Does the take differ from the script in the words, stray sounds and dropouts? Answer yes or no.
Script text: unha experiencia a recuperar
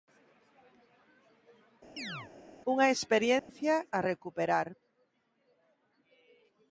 yes